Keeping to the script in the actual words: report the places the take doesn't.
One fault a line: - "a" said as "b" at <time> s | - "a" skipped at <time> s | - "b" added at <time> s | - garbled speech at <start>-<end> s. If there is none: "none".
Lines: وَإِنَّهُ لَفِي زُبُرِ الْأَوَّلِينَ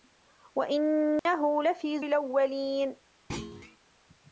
- "زُبُرِ" skipped at 2.0 s